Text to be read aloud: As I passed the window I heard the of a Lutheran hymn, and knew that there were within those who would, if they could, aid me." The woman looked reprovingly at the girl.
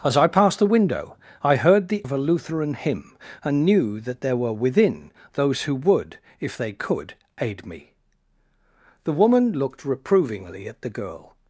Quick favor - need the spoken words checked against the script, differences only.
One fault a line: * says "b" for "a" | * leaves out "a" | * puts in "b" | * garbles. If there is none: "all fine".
all fine